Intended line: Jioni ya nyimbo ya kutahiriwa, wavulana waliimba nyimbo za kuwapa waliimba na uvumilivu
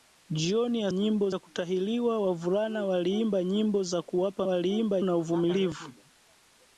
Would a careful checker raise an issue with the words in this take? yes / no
no